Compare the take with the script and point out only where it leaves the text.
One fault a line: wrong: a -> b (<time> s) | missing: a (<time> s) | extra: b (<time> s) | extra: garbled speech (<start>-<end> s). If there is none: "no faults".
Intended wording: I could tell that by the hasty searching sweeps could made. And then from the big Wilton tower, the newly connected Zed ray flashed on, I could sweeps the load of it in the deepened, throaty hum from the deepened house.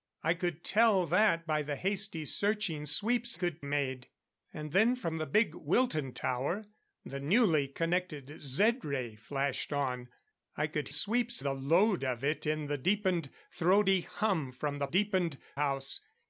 no faults